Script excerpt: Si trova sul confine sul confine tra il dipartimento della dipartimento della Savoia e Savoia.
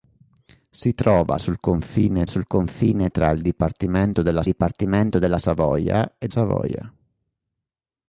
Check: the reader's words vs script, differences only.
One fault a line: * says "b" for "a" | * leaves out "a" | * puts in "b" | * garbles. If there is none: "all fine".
all fine